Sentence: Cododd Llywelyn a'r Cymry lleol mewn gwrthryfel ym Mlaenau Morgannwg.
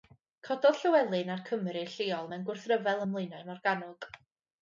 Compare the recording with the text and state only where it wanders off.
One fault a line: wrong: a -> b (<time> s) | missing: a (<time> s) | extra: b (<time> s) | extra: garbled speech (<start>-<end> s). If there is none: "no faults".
no faults